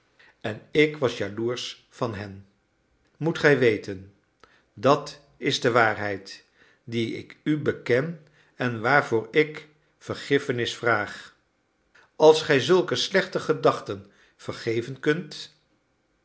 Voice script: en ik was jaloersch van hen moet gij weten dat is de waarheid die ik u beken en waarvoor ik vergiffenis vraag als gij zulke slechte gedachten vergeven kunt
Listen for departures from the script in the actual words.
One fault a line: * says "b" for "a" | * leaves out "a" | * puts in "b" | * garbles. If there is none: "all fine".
all fine